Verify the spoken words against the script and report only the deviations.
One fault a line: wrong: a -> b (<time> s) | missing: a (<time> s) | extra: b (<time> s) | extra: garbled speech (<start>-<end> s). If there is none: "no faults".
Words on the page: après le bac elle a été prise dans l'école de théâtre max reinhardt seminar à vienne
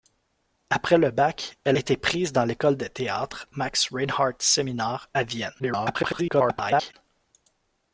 missing: a (1.8 s)
extra: garbled speech (5.6-6.9 s)